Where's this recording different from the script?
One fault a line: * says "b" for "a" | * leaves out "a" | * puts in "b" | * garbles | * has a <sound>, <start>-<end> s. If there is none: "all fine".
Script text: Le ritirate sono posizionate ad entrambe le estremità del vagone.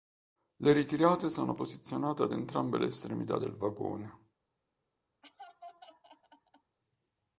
* has a laugh, 5.2-6.8 s